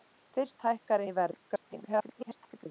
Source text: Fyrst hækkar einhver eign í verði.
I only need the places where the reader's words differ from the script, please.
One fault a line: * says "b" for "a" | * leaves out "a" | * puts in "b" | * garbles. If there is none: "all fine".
* leaves out "einhver eign"
* garbles